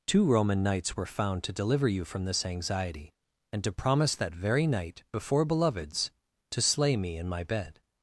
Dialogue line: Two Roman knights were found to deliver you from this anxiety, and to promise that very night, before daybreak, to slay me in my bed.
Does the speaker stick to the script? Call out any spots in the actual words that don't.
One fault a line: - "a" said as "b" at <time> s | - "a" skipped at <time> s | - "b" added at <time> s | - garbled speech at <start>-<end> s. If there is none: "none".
- "daybreak" said as "beloveds" at 5.4 s